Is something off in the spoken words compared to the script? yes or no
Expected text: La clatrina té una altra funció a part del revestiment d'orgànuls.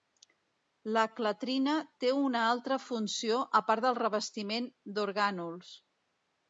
no